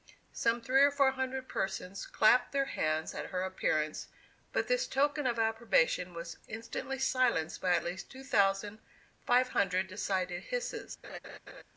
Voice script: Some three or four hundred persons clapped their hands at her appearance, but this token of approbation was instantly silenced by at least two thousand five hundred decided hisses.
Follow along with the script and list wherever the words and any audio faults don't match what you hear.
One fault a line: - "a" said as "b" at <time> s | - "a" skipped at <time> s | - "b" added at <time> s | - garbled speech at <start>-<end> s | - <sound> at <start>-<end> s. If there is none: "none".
- laugh at 11.0-11.6 s